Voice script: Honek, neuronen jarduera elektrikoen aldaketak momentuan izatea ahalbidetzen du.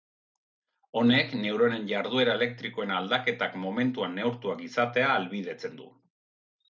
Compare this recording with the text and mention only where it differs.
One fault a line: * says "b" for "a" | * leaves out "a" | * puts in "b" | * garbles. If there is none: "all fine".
* puts in "neurtuak"